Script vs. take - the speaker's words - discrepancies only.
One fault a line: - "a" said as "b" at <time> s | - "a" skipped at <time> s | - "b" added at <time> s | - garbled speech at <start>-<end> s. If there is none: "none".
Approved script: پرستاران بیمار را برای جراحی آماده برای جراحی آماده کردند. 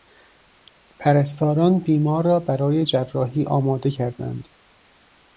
- "برای جراحی آماده" skipped at 3.9 s